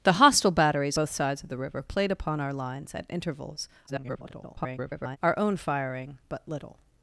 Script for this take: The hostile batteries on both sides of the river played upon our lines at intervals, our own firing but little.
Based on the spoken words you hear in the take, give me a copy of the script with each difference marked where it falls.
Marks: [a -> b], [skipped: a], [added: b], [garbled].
The hostile batteries [skipped: on] both sides of the river played upon our lines at intervals, [garbled] our own firing but little.